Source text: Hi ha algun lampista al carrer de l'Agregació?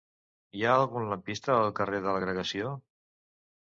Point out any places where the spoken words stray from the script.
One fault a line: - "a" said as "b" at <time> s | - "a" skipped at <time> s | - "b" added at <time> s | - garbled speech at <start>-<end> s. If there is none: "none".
none